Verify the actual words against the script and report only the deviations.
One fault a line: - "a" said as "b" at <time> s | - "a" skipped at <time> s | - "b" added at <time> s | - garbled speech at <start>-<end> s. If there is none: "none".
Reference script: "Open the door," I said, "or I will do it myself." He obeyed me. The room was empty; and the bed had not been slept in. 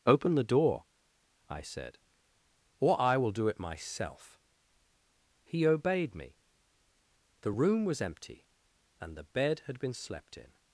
- "not" skipped at 9.8 s